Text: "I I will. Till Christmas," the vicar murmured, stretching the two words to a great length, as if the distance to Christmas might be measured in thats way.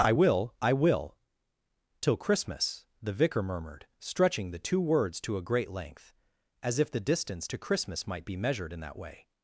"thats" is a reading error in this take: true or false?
true